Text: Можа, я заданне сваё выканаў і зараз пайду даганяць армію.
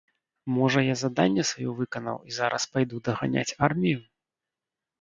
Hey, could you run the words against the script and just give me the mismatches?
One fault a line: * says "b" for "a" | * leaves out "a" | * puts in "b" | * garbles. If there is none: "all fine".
all fine